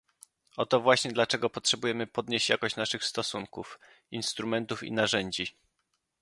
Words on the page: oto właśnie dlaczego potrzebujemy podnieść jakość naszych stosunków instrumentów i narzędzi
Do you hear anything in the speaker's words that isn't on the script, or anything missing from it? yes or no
no